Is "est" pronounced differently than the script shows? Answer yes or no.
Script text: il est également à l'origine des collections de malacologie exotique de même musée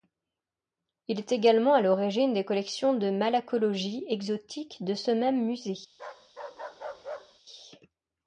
no